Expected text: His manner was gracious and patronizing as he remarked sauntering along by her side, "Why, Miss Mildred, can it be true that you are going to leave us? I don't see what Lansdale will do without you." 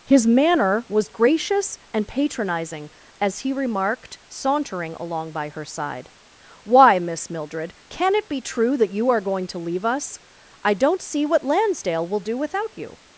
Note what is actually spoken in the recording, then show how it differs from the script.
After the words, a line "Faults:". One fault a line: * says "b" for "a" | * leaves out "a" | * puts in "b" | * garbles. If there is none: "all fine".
His manner was gracious and patronizing as he remarked sauntering along by her side, "Why, Miss Mildred, can it be true that you are going to leave us? I don't see what Lansdale will do without you."
Faults:
all fine